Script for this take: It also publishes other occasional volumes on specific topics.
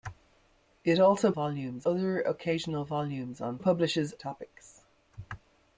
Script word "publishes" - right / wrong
wrong